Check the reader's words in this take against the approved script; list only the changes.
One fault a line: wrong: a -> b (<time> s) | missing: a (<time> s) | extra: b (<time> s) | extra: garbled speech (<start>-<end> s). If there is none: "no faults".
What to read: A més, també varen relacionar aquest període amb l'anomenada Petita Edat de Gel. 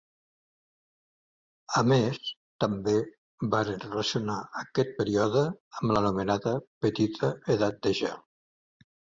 no faults